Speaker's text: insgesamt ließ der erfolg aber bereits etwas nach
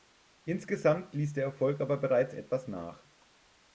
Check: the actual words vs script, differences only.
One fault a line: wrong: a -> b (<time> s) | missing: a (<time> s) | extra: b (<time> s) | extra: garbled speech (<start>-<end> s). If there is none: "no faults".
no faults